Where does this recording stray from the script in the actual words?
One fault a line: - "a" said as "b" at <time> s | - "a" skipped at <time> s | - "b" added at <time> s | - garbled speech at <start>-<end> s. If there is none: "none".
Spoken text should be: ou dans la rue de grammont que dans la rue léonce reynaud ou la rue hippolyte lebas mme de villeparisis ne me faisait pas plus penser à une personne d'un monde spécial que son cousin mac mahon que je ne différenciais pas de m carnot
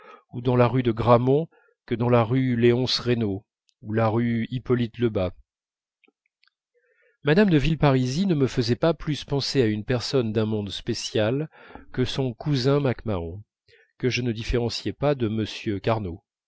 none